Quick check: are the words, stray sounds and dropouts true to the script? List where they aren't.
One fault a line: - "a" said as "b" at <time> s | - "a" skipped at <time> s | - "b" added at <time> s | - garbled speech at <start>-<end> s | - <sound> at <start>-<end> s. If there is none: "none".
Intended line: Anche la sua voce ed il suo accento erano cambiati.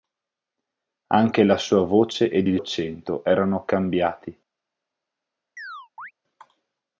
- "suo" skipped at 2.6 s
- chirp at 5.6-6.1 s